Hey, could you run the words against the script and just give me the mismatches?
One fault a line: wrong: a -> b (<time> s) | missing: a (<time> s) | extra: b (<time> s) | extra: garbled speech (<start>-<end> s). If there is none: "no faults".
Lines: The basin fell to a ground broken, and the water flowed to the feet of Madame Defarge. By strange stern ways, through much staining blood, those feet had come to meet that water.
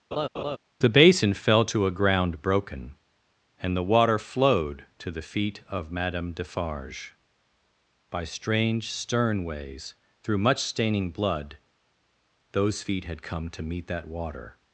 no faults